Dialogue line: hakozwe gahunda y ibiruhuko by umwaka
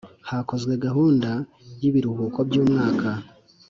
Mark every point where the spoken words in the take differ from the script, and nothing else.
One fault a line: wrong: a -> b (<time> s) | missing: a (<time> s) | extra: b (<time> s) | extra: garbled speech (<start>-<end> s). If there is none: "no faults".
no faults